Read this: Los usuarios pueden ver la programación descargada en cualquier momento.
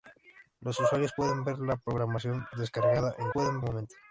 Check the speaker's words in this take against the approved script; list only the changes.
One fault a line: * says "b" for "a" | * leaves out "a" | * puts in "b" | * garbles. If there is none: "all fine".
* says "pueden" for "cualquier"